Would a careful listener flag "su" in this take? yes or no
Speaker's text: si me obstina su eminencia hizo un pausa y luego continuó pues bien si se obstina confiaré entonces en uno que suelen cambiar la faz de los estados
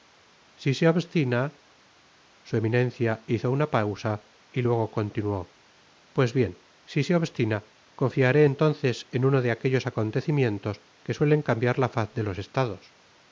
no